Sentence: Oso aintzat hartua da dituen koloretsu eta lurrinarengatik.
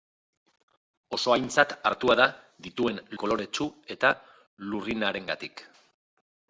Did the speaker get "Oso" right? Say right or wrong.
right